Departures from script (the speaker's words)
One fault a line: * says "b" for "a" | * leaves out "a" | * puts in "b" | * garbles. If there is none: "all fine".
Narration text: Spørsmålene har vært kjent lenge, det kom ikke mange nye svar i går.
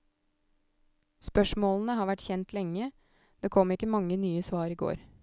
all fine